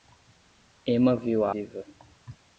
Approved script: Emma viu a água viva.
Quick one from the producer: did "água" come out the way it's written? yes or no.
no